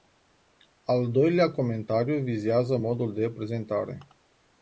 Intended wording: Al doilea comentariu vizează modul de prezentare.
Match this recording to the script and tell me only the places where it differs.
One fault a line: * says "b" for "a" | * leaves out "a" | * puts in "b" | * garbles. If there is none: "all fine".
all fine